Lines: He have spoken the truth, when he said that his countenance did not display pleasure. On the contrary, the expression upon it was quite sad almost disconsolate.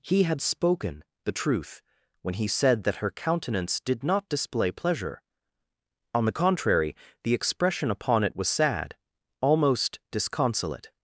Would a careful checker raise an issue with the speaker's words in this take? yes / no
yes